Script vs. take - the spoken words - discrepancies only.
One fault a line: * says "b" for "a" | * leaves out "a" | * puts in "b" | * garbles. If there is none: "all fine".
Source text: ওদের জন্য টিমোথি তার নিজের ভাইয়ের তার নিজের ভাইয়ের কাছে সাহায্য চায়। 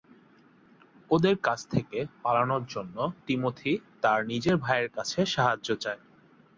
* says "কাছ থেকে পালানোর জন্য টিমোথি" for "জন্য টিমোথি তার নিজের ভাইয়ের"